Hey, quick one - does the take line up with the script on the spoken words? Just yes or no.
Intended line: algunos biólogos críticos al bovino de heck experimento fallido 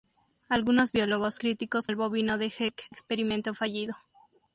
yes